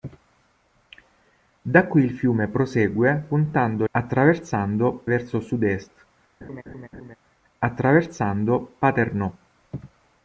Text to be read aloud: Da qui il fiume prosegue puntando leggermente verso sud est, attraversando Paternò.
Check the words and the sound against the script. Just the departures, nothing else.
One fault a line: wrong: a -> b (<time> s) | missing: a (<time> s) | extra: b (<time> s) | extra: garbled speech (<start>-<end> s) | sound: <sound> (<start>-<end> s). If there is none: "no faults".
wrong: leggermente -> attraversando (3.9 s)
sound: laugh (6.4-7.2 s)